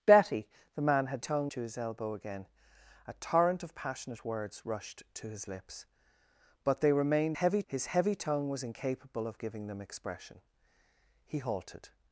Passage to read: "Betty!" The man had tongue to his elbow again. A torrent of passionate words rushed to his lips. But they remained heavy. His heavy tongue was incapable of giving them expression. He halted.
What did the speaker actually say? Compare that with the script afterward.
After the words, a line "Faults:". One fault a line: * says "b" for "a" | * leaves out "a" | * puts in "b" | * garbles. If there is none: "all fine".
"Betty!" The man had tongue to his elbow again. A torrent of passionate words rushed to his lips. But they remained heavy. His heavy tongue was incapable of giving them expression. He halted.
Faults:
all fine